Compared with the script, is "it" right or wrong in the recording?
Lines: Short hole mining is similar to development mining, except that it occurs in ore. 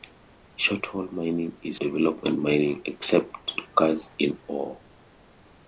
wrong